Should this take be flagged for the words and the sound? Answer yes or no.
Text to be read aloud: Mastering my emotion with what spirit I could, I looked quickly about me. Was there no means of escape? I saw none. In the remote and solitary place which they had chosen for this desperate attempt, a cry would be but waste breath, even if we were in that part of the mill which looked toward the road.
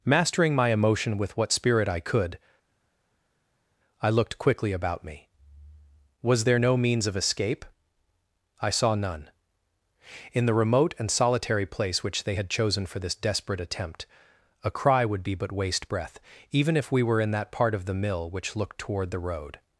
no